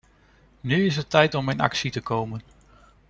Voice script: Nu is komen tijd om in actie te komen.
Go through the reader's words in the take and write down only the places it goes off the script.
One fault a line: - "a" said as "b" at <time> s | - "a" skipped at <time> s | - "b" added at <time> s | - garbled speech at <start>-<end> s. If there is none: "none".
- "komen" said as "het" at 0.9 s